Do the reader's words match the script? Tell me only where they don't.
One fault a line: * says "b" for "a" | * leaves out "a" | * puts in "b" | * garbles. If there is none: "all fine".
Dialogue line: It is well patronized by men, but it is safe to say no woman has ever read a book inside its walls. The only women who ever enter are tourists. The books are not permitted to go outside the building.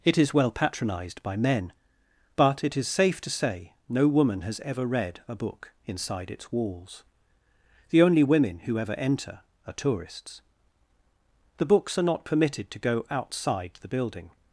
all fine